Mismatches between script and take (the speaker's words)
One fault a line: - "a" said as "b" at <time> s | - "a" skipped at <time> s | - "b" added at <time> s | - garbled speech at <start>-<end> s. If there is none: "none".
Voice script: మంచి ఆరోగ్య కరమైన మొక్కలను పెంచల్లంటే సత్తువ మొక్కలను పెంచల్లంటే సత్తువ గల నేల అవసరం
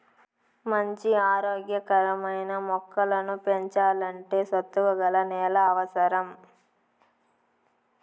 - "మొక్కలను పెంచల్లంటే సత్తువ" skipped at 4.9 s